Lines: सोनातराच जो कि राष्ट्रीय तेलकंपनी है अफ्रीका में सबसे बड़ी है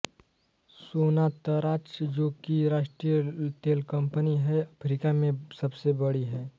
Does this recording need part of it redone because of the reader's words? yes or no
no